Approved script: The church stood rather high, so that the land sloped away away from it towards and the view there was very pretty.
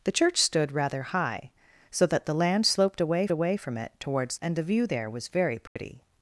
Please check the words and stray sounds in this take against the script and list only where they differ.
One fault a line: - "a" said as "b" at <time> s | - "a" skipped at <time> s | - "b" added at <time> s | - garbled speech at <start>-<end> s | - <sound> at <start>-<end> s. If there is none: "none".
- dropout at 5.7-5.8 s